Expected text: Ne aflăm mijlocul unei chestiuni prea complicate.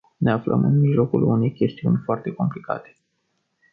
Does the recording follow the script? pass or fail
fail